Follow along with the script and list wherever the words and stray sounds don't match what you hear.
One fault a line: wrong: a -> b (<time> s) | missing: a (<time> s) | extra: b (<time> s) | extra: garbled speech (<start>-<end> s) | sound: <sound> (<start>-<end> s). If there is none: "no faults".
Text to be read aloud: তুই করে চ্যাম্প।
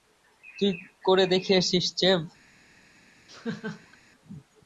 extra: দেখিয়েছিস (1.3 s)
sound: laugh (3.3-4.0 s)